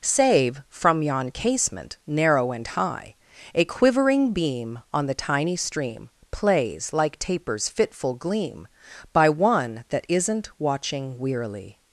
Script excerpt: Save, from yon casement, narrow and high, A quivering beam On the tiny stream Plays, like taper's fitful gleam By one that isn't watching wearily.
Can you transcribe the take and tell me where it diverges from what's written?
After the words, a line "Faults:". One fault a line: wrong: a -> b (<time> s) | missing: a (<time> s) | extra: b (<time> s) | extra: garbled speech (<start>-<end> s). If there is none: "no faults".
Save, from yon casement, narrow and high, A quivering beam On the tiny stream Plays, like taper's fitful gleam By one that isn't watching wearily.
Faults:
no faults